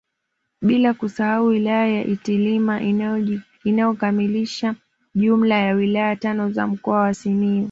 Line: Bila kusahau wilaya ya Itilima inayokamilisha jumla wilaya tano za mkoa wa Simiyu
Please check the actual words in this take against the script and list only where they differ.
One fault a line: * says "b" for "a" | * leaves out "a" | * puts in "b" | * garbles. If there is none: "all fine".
* puts in "ya"